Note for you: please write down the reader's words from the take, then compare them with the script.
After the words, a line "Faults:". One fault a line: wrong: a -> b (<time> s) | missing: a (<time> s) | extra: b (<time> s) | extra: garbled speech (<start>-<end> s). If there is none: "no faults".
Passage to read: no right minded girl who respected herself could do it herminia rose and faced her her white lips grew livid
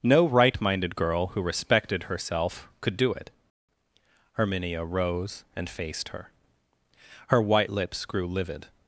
no right minded girl who respected herself could do it herminia rose and faced her her white lips grew livid
Faults:
no faults